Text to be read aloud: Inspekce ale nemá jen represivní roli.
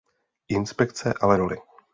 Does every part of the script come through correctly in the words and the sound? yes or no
no